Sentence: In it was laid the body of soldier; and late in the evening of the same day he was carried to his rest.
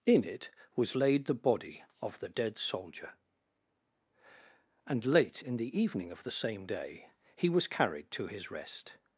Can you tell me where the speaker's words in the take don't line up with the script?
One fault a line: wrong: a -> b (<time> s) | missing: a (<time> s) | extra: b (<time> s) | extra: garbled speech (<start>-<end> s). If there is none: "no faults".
extra: the dead (2.2 s)